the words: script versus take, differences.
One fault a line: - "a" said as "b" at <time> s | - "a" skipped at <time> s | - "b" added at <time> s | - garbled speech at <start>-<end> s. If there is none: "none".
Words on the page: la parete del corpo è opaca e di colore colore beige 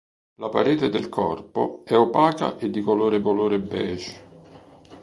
none